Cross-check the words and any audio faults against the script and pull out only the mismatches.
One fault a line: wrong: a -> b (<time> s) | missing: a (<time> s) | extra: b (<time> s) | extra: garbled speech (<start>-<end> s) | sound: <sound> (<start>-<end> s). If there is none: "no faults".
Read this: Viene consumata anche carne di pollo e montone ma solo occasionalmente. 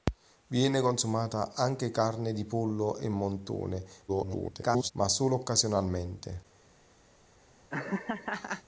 extra: garbled speech (4.1-4.9 s)
sound: laugh (7.7-8.6 s)